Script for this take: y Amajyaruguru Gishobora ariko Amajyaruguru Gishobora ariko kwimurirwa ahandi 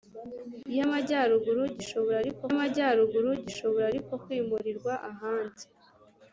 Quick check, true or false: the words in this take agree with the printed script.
true